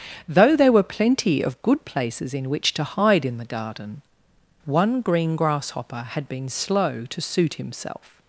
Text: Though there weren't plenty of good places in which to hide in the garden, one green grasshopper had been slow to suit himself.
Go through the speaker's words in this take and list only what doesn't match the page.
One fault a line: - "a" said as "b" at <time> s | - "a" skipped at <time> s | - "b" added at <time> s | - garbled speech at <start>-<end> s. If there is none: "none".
- "weren't" said as "were" at 0.7 s